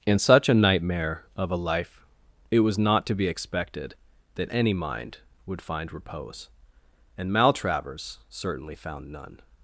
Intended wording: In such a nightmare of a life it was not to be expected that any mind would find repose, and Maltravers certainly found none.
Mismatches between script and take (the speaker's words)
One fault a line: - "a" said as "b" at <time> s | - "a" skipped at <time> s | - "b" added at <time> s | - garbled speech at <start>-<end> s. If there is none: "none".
none